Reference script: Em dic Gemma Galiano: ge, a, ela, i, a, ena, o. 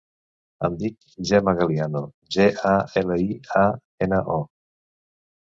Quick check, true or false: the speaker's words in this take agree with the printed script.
true